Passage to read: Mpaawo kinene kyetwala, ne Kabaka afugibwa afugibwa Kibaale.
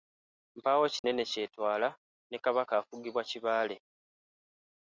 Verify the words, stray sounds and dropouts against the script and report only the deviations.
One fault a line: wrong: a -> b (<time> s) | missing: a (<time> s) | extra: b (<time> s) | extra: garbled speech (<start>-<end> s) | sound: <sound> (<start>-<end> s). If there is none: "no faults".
sound: dropout (1.0-1.0 s)
missing: afugibwa (3.2 s)